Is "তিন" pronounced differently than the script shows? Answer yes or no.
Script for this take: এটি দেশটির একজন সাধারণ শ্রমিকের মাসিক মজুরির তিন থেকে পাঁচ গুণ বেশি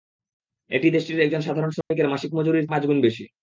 yes